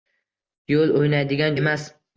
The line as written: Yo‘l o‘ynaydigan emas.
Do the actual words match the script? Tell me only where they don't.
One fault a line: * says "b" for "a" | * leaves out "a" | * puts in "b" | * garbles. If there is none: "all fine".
all fine